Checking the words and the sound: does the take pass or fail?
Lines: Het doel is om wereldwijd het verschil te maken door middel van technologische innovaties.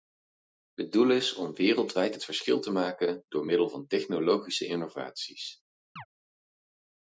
fail